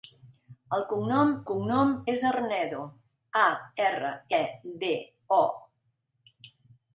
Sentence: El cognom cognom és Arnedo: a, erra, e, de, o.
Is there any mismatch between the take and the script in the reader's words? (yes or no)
no